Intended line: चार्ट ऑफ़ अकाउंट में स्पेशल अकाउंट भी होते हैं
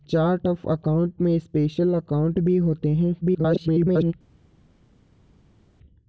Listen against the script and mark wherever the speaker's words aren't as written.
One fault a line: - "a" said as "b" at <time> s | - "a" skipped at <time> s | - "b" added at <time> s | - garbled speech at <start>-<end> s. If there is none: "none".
- garbled speech at 3.2-4.1 s